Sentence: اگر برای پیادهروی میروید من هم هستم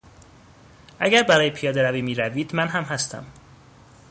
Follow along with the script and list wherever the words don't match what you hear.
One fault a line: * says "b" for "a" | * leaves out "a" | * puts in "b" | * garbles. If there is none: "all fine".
all fine